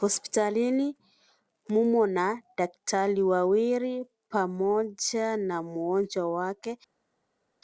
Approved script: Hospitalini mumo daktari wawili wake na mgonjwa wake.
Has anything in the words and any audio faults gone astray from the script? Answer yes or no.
yes